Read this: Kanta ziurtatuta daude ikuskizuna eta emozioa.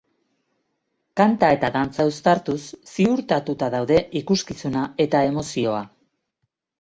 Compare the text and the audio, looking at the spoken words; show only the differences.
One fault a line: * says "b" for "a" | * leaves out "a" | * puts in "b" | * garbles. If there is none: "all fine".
* puts in "eta dantza uztartuz"